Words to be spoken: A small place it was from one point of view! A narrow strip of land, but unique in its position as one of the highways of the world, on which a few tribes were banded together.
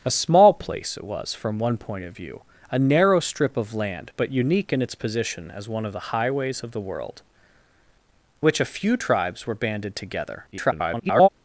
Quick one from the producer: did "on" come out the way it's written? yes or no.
no